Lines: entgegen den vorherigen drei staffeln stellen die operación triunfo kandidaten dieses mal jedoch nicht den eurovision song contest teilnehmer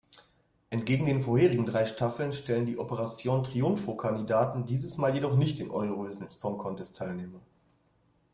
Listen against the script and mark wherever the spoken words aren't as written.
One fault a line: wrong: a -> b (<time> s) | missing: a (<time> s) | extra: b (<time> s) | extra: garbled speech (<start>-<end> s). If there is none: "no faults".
no faults